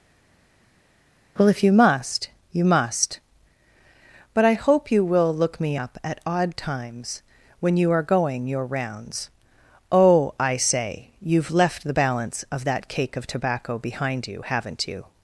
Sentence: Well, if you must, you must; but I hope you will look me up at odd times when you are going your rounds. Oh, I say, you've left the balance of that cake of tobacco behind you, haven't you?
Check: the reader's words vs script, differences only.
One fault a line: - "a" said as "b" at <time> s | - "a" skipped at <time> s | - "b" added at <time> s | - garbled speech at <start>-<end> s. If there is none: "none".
none